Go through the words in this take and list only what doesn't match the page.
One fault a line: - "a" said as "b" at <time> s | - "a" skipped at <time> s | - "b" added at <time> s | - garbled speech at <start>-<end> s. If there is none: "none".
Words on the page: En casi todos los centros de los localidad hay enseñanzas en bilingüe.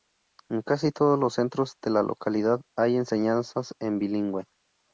- "los" said as "la" at 1.9 s